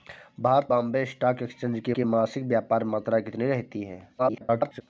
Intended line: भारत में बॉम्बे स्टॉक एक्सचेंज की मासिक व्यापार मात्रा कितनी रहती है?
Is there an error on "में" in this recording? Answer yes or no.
yes